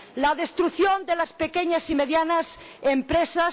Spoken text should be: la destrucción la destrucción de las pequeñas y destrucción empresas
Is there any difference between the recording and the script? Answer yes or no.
yes